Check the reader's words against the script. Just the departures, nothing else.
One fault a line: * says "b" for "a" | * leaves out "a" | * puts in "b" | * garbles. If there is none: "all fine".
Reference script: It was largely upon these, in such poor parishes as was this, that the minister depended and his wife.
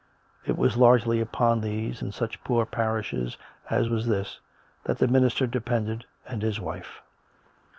all fine